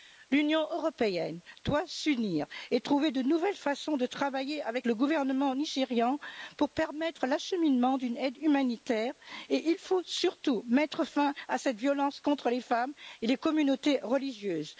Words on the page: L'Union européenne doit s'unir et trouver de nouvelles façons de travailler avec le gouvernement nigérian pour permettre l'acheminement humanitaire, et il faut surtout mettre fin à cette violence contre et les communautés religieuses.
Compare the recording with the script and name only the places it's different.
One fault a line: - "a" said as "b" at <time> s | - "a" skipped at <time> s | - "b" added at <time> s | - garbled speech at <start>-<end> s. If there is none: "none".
- "d'une aide" added at 8.0 s
- "les femmes" added at 12.5 s